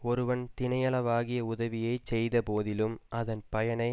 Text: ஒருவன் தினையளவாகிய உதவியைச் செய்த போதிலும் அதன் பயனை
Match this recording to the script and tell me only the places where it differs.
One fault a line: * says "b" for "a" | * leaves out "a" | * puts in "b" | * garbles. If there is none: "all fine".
all fine